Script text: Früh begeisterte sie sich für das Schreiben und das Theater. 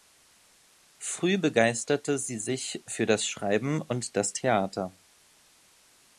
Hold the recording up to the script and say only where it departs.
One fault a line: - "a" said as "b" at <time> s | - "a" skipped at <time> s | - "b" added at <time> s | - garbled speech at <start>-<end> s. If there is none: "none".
none